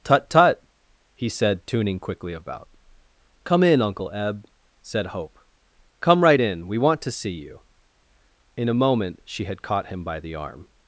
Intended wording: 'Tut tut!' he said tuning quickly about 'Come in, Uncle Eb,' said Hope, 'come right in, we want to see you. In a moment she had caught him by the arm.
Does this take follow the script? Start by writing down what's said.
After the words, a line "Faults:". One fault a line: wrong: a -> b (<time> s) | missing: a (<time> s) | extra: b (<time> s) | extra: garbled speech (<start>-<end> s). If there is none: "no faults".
'Tut tut!' he said tuning quickly about 'Come in, Uncle Eb,' said Hope, 'come right in, we want to see you. In a moment she had caught him by the arm.
Faults:
no faults